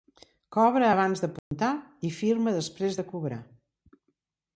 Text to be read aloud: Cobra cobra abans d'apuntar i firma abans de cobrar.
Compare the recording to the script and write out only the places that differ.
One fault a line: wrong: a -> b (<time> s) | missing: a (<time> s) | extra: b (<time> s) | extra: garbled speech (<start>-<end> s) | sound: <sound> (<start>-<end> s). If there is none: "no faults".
missing: cobra (0.9 s)
sound: dropout (1.4-1.5 s)
wrong: abans -> després (2.6 s)